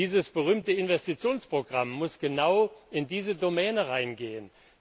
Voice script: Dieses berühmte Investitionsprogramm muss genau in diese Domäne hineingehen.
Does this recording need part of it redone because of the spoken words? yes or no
no